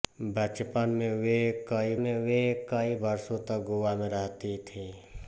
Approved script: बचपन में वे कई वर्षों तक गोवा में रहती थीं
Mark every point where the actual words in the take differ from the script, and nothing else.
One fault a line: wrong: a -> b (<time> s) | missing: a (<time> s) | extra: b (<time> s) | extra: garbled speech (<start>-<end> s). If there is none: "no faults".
extra: में वे कई (1.9 s)